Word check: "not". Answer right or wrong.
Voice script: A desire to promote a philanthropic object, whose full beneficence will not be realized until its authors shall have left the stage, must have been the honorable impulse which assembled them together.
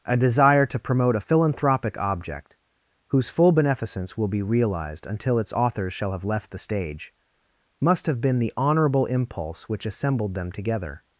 wrong